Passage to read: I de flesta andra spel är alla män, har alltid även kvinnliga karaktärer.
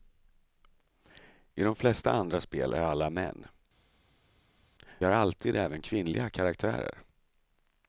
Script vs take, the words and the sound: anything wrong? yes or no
no